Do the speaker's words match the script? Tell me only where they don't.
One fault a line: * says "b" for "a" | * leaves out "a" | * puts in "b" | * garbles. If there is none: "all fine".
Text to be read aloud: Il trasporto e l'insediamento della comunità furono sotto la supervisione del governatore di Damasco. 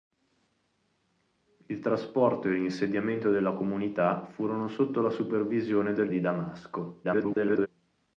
* leaves out "governatore"
* garbles